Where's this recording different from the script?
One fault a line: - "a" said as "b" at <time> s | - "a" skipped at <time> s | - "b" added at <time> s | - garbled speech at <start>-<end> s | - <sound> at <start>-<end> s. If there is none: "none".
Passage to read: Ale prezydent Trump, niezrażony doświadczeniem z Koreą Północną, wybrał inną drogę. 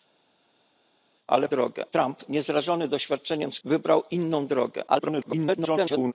- "prezydent" said as "drogę" at 1.5 s
- "Koreą Północną" skipped at 3.6 s
- garbled speech at 4.9-6.1 s